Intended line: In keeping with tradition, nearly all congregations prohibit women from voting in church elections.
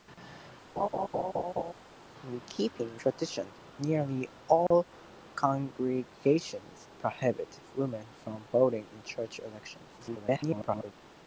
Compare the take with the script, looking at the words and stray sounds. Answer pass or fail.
fail